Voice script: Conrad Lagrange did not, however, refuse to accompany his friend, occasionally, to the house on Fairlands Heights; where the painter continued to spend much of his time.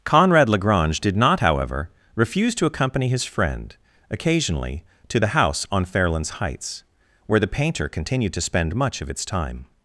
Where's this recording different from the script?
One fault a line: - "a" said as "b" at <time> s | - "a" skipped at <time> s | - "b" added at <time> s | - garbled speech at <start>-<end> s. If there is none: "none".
- "his" said as "its" at 9.1 s